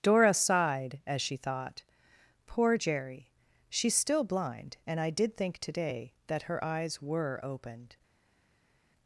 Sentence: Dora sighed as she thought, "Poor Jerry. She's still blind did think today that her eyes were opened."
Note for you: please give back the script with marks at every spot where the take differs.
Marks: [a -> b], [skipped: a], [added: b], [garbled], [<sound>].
Dora sighed as she thought, "Poor Jerry. She's still blind [added: and I] did think today that her eyes were opened."